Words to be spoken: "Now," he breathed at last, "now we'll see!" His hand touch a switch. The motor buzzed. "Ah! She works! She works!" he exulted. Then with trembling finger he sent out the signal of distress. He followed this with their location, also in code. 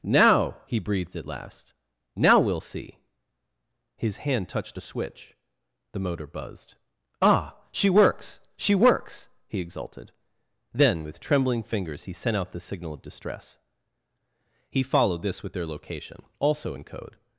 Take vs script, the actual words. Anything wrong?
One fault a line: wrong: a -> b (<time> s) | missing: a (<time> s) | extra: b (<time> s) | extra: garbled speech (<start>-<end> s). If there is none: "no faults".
wrong: touch -> touched (4.5 s)
wrong: finger -> fingers (11.6 s)